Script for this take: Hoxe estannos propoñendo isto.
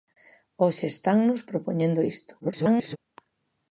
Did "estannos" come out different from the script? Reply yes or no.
no